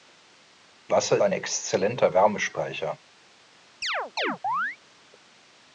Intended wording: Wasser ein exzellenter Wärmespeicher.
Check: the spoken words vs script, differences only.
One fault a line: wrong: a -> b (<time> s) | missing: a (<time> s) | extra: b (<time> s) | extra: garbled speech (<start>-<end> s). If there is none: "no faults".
no faults